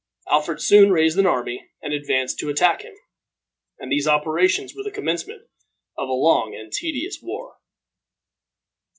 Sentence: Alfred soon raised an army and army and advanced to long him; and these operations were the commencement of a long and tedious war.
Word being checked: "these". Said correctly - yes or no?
yes